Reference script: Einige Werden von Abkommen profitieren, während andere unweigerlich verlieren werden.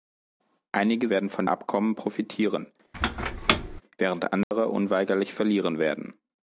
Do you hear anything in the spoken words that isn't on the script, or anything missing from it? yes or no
no